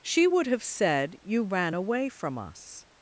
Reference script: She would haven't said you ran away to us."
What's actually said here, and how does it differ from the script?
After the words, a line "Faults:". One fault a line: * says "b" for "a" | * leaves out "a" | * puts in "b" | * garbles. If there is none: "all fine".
She would have said you ran away from us."
Faults:
* says "have" for "haven't"
* says "from" for "to"